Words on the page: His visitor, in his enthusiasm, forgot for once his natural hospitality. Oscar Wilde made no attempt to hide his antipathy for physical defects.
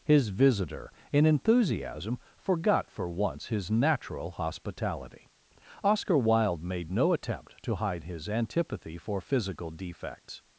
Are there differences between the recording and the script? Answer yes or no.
yes